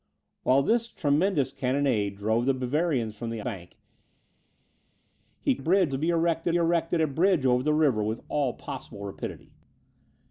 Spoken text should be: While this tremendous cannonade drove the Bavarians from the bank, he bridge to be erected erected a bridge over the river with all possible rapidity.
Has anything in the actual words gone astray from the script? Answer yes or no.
no